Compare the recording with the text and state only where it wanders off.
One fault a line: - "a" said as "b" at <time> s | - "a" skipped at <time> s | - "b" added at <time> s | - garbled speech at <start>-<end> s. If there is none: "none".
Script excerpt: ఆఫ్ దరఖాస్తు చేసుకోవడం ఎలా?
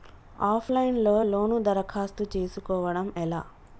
- "లైన్ లో లోను" added at 0.7 s